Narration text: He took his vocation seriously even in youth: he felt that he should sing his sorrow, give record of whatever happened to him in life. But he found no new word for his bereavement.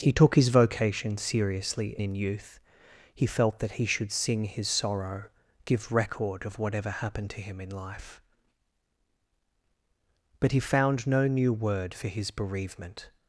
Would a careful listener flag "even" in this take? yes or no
yes